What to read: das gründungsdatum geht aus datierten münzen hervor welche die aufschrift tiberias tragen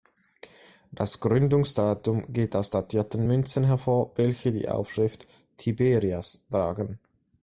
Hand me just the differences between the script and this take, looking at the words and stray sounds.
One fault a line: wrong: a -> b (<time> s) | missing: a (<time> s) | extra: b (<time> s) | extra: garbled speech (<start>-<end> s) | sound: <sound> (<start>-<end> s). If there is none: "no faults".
no faults